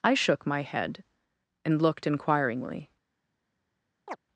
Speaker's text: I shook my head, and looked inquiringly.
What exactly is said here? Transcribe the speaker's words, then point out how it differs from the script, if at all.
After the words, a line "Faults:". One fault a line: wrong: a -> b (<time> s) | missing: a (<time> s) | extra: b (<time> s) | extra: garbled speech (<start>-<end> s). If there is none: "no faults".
I shook my head, and looked inquiringly.
Faults:
no faults